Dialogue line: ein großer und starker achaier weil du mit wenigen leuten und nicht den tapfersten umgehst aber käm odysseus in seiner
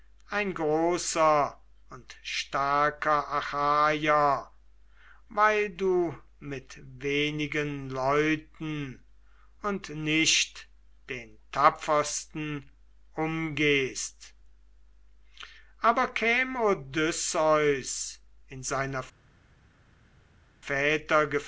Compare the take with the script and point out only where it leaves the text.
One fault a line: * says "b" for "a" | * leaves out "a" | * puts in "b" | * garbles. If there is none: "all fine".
all fine